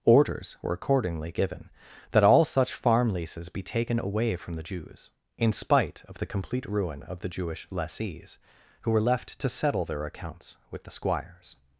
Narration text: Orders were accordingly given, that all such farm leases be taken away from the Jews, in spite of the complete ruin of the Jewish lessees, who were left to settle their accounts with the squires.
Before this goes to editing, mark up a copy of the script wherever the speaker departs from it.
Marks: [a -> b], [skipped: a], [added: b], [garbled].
Orders were accordingly given, that all such farm leases be taken away from the Jews, in spite of the complete ruin of the Jewish lessees, who were left to settle their accounts with the squires.